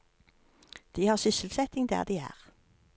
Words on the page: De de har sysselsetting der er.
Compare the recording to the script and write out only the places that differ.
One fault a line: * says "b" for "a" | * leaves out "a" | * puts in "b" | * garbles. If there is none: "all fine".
* leaves out "de"
* puts in "de"